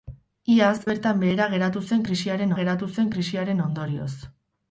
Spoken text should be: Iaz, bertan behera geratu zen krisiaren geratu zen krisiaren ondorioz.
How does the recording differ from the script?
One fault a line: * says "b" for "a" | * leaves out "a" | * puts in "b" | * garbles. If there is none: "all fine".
all fine